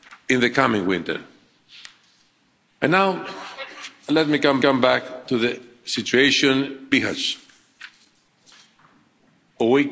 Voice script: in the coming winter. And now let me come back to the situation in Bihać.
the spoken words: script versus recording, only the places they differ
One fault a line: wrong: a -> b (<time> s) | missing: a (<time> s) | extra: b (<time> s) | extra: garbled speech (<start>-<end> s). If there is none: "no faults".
extra: come (4.6 s)
missing: in (6.9 s)